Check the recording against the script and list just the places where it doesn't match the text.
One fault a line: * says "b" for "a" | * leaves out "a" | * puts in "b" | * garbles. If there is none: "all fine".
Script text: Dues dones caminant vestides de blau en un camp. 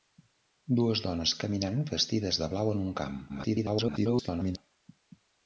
* garbles